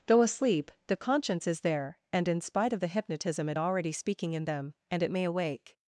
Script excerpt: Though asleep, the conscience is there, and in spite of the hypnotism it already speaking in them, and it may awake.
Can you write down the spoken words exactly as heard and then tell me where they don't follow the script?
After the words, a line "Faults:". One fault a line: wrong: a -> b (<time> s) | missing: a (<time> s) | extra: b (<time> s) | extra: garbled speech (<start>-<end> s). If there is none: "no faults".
Though asleep, the conscience is there, and in spite of the hypnotism it already speaking in them, and it may awake.
Faults:
no faults